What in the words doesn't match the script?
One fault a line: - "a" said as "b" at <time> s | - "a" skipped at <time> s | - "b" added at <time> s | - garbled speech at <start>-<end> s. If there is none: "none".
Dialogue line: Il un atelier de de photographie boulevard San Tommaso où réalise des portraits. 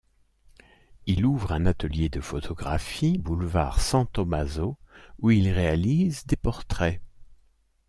- "ouvre" added at 1.3 s
- "de" skipped at 2.2 s
- "il" added at 5.3 s